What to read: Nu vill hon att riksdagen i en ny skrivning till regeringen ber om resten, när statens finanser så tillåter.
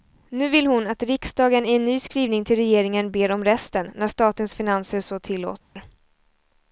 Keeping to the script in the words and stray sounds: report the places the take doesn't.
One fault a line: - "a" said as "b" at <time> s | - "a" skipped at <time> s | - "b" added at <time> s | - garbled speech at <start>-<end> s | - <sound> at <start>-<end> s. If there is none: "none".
- dropout at 5.6-5.8 s